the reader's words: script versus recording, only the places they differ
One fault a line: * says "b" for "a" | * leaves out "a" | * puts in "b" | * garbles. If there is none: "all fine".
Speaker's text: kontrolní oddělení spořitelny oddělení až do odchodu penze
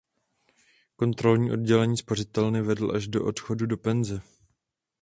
* says "vedl" for "oddělení"
* puts in "do"